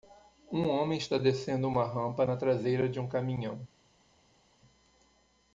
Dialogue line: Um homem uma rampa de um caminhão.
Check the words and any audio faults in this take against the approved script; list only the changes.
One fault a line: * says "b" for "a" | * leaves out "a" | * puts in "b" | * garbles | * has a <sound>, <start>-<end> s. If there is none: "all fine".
* puts in "está descendo"
* puts in "na traseira"